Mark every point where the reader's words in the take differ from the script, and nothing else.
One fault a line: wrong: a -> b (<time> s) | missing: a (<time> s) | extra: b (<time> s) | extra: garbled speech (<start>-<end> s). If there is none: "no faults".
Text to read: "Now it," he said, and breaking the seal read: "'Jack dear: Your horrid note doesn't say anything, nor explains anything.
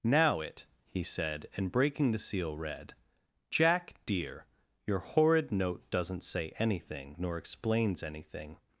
no faults